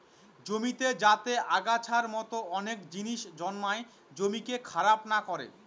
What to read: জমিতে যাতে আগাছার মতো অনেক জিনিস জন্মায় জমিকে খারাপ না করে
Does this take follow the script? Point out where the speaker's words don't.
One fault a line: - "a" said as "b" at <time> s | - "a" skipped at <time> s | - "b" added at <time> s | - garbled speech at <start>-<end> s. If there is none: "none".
none